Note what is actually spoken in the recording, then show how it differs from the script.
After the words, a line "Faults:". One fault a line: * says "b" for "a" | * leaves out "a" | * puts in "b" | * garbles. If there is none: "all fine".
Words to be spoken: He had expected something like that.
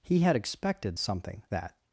He had expected something that.
Faults:
* leaves out "like"